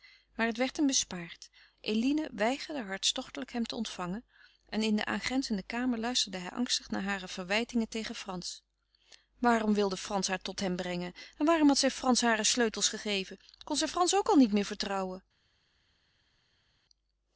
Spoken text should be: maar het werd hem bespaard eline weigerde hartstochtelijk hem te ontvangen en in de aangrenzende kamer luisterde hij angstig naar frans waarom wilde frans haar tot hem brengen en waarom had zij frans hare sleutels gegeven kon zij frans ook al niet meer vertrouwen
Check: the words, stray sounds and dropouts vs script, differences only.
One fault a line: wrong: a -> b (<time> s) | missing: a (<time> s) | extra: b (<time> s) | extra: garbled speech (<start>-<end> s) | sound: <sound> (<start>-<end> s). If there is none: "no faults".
extra: hare verwijtingen tegen (7.0 s)